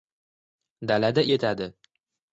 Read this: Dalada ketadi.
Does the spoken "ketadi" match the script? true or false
true